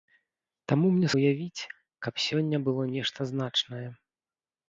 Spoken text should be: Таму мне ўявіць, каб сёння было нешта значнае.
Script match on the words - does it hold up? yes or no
yes